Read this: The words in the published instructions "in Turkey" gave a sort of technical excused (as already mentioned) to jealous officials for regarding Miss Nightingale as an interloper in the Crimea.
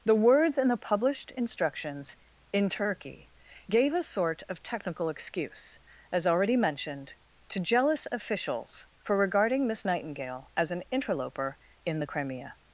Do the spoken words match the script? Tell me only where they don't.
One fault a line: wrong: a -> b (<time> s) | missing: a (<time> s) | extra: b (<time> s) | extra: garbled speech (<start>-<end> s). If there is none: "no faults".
wrong: excused -> excuse (5.1 s)